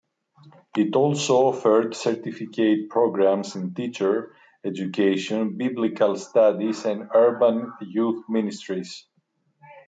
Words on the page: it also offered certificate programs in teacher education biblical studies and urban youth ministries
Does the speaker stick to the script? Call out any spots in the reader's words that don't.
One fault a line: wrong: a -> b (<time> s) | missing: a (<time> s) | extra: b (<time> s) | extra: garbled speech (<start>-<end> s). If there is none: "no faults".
no faults